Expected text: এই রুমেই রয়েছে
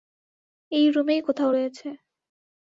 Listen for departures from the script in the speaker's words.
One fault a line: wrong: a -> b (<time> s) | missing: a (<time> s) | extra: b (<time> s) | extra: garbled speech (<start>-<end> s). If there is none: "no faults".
extra: কোথাও (1.2 s)